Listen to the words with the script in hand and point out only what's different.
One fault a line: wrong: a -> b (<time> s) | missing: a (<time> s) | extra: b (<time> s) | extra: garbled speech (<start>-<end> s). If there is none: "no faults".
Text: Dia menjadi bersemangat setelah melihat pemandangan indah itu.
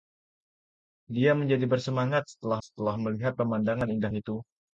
extra: setelah (2.7 s)